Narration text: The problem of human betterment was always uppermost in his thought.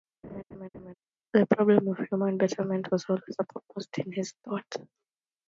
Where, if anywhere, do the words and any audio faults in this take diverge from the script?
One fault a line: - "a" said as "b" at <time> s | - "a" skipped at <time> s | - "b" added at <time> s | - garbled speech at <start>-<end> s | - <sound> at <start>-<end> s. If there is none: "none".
- laugh at 0.2-0.9 s